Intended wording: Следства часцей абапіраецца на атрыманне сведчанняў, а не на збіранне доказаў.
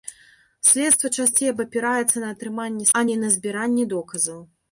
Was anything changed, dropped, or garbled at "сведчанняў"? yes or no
yes